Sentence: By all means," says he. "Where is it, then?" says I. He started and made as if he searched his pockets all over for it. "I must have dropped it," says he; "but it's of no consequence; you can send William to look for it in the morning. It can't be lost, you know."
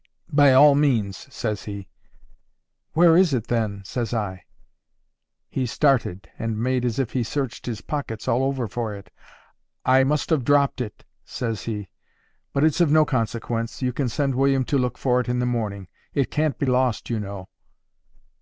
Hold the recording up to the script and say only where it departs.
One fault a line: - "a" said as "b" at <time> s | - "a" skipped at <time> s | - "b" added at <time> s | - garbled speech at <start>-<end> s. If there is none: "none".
none